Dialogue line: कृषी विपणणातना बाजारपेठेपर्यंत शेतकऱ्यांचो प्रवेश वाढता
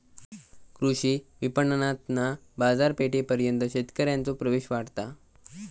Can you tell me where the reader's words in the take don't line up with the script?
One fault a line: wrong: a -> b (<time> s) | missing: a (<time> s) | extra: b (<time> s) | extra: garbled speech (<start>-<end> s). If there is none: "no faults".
no faults